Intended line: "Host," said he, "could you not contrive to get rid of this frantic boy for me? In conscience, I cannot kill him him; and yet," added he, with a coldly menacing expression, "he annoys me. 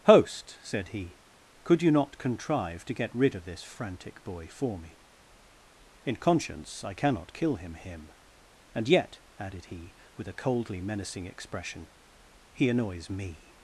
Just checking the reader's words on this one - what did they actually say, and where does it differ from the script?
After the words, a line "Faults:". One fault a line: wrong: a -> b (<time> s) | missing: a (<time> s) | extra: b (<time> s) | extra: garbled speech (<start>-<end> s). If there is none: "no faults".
"Host," said he, "could you not contrive to get rid of this frantic boy for me? In conscience, I cannot kill him him; and yet," added he, with a coldly menacing expression, "he annoys me.
Faults:
no faults